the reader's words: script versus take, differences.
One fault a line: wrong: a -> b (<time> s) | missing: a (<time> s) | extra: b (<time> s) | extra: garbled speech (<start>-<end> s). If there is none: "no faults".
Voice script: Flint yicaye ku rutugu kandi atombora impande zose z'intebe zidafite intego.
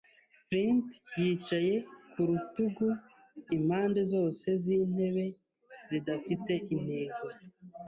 missing: kandi atombora (2.9 s)